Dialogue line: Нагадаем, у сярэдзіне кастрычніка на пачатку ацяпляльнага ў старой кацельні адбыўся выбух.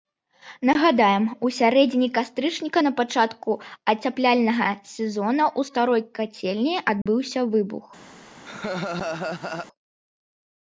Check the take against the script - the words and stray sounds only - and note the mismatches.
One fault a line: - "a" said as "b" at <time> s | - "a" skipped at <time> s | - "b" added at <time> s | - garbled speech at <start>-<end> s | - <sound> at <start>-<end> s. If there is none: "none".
- "сезона" added at 4.9 s
- dropout at 7.0-7.1 s
- laugh at 8.4-9.7 s